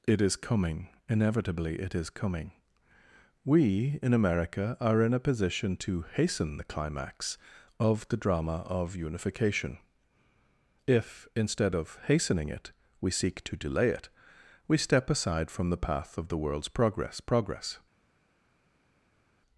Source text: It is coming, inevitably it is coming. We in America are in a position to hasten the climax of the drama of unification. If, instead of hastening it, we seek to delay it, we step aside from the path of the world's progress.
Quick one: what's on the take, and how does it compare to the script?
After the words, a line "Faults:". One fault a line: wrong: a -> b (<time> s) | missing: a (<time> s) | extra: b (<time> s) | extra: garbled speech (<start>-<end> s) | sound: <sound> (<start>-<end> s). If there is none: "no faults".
It is coming, inevitably it is coming. We in America are in a position to hasten the climax of the drama of unification. If, instead of hastening it, we seek to delay it, we step aside from the path of the world's progress progress.
Faults:
extra: progress (17.2 s)